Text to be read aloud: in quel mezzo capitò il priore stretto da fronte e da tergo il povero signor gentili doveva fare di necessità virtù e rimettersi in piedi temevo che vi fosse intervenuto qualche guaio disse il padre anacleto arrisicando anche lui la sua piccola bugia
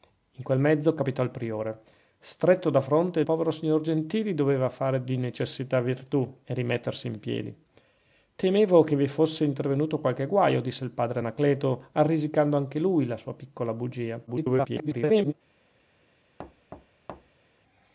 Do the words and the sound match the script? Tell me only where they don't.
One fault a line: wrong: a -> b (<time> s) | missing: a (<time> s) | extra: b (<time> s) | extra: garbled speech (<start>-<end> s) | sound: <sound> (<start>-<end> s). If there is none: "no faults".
missing: da tergo il (3.2 s)
extra: garbled speech (14.3-15.3 s)
sound: thud (16.4-17.4 s)